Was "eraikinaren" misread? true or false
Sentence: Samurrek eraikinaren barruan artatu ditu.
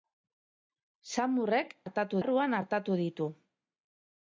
true